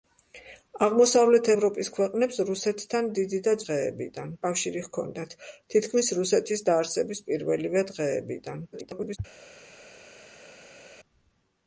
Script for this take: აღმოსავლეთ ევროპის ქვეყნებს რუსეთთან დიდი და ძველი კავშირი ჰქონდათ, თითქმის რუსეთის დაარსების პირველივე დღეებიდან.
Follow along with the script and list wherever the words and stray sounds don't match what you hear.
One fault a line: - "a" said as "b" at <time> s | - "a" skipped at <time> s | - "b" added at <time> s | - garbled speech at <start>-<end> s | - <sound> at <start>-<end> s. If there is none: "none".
- "ძველი" said as "დღეებიდან" at 3.7 s
- garbled speech at 8.7-9.2 s